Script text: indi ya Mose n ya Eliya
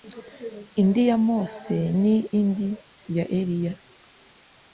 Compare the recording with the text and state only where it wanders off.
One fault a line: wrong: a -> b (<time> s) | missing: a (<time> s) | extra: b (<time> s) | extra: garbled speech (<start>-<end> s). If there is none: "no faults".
extra: indi (2.4 s)